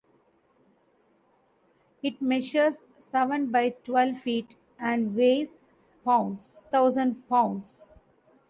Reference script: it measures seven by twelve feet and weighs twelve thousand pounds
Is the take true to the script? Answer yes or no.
no